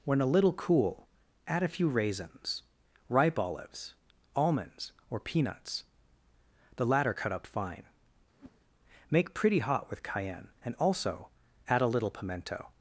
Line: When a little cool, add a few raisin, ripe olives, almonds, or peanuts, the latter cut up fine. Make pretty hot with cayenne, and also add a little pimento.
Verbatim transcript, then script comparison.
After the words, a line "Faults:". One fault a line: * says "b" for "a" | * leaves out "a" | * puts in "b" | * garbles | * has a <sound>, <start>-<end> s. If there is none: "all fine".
When a little cool, add a few raisins, ripe olives, almonds, or peanuts, the latter cut up fine. Make pretty hot with cayenne, and also add a little pimento.
Faults:
* says "raisins" for "raisin"
* has a whoosh, 8.3-8.6 s